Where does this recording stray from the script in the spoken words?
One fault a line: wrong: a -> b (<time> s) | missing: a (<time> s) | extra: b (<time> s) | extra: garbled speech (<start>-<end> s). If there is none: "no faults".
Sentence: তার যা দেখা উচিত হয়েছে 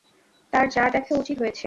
no faults